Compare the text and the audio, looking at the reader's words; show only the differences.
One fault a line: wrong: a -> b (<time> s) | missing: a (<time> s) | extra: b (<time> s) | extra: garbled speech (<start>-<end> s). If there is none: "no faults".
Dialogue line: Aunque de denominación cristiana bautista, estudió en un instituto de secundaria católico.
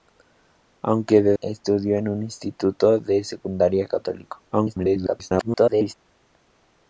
missing: denominación cristiana bautista (1.4 s)
extra: garbled speech (4.5-5.9 s)